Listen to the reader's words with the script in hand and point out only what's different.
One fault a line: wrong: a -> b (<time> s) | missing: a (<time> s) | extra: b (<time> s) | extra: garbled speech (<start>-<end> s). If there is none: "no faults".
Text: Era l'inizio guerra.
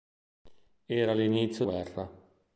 no faults